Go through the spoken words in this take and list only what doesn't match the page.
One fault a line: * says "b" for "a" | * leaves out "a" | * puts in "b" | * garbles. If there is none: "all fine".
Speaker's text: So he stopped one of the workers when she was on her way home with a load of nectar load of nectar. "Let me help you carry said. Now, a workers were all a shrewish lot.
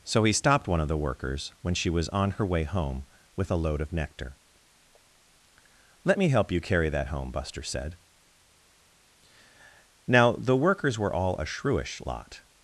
* leaves out "load of nectar"
* puts in "that home Buster"
* says "the" for "a"